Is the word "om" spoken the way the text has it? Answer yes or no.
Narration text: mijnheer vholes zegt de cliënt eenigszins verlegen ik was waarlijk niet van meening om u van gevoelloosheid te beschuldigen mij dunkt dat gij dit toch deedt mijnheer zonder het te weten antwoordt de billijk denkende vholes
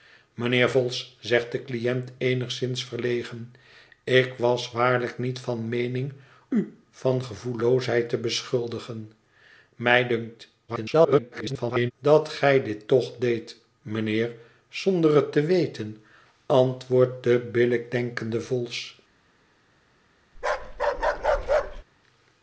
no